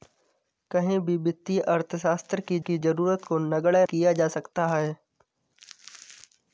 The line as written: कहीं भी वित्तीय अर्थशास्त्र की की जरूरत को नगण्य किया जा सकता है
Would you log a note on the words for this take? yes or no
no